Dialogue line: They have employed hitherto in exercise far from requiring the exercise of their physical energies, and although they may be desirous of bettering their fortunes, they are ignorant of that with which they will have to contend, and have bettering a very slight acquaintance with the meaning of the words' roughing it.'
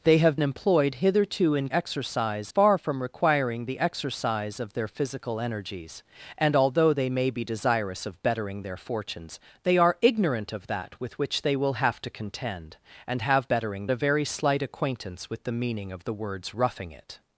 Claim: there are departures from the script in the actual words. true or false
false